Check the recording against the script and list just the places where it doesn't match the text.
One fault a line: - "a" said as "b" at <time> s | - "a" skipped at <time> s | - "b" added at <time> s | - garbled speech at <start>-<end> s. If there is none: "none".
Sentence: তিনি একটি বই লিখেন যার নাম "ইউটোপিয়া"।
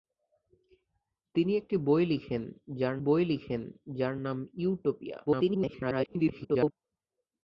- "বই লিখেন যার" added at 3.0 s
- garbled speech at 5.3-6.7 s